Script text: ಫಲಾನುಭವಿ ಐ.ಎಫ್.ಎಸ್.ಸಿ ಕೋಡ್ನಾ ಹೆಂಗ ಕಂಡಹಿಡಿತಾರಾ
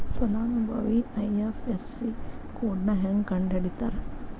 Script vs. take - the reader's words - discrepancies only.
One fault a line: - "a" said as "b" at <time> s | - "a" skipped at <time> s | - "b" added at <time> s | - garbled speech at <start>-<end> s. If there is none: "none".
none